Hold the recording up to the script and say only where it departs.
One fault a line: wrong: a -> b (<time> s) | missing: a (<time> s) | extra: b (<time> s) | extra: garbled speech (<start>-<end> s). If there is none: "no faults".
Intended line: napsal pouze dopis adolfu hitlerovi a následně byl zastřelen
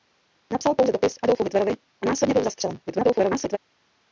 extra: garbled speech (2.9-3.6 s)